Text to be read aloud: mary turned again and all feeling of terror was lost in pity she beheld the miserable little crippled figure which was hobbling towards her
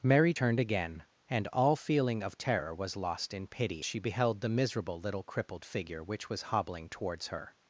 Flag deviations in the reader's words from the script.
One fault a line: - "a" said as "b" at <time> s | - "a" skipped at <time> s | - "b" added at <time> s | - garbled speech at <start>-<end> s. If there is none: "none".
none